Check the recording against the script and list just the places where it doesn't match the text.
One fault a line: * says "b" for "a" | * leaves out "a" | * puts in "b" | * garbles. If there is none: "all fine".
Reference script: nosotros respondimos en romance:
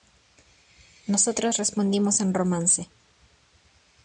all fine